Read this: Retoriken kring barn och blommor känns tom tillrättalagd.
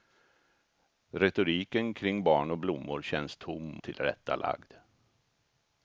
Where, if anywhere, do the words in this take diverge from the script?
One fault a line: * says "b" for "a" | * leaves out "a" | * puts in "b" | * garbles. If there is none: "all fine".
all fine